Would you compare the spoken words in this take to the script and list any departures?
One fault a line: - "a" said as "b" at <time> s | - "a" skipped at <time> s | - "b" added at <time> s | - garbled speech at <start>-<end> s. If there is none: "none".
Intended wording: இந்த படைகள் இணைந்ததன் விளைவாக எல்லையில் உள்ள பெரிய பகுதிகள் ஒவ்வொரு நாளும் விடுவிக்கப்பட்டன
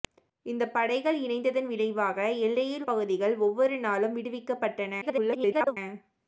- "உள்ள பெரிய" skipped at 2.9 s
- garbled speech at 5.0-5.8 s